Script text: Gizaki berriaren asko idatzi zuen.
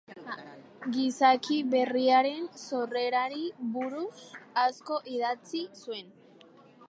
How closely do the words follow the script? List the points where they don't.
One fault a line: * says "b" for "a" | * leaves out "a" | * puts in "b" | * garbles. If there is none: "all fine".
* puts in "sorrerari buruz"